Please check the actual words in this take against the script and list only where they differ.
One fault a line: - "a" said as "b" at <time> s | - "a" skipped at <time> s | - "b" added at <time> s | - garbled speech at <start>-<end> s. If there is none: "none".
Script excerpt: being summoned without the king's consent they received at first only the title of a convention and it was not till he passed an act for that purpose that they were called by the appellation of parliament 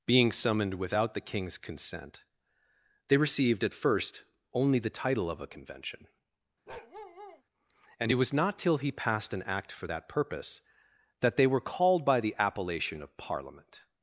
none